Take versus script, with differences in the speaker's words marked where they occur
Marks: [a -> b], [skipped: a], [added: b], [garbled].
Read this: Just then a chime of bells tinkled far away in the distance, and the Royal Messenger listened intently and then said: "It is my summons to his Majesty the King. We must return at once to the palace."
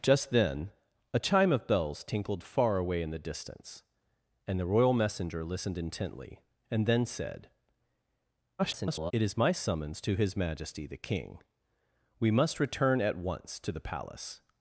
Just then a chime of bells tinkled far away in the distance, and the Royal Messenger listened intently and then said: [garbled] "It is my summons to his Majesty the King. We must return at once to the palace."